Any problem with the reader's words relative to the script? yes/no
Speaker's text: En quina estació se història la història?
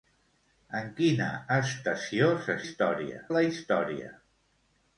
no